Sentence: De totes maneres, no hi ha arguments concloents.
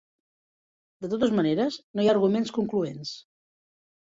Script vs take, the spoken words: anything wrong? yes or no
no